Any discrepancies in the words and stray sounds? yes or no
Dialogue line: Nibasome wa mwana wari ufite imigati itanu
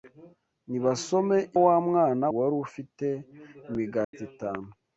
yes